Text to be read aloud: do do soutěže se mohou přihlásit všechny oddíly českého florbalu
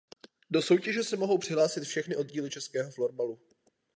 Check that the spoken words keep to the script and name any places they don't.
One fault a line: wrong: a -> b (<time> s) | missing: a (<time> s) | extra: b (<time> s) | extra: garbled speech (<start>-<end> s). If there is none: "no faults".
missing: do (0.6 s)